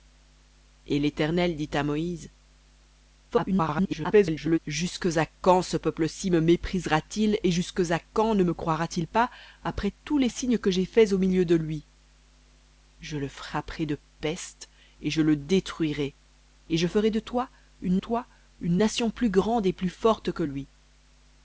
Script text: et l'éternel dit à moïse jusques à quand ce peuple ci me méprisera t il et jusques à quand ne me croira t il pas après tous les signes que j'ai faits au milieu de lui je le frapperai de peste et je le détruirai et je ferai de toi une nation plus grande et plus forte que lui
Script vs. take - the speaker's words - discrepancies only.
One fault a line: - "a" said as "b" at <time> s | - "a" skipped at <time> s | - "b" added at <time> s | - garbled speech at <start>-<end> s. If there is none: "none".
- garbled speech at 3.3-4.6 s
- "toi une" added at 18.0 s